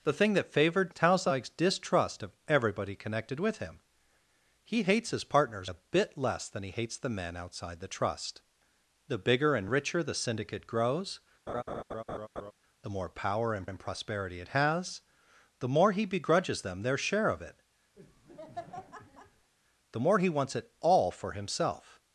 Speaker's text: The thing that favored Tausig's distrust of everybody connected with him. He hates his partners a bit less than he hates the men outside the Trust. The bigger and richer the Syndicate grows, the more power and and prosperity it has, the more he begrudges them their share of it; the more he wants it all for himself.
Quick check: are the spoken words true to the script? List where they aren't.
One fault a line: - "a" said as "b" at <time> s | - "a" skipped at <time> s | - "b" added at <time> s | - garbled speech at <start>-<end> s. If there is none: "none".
none